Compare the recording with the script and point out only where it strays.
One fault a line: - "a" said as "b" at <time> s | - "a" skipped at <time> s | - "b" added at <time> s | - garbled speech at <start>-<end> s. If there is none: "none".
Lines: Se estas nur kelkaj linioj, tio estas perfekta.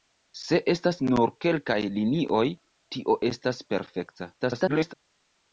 - garbled speech at 4.4-4.9 s